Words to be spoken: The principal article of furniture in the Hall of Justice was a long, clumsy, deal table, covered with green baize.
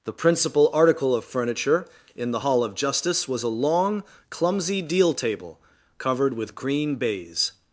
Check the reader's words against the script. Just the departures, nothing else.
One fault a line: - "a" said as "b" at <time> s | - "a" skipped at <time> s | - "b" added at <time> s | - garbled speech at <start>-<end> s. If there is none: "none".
none